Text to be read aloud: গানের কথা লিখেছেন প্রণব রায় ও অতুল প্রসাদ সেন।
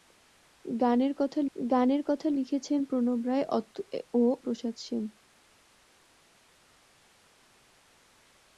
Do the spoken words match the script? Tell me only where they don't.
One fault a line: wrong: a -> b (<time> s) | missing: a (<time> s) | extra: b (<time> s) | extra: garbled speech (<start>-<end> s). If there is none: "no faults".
extra: গানের কথা (1.6 s)
missing: অতুল (4.2 s)